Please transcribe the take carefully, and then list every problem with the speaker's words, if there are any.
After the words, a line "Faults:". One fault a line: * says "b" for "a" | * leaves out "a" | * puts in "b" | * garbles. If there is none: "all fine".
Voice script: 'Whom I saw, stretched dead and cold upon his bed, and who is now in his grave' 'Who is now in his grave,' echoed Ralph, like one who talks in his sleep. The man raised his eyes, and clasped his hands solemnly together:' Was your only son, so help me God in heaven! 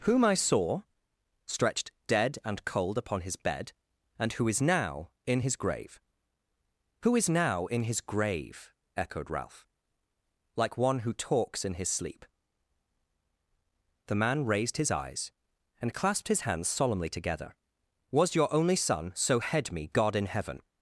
'Whom I saw, stretched dead and cold upon his bed, and who is now in his grave' 'Who is now in his grave,' echoed Ralph, like one who talks in his sleep. The man raised his eyes, and clasped his hands solemnly together:' Was your only son, so head me God in heaven!
Faults:
* says "head" for "help"